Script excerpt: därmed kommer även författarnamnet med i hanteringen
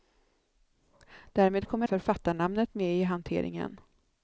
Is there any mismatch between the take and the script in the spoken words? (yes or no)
yes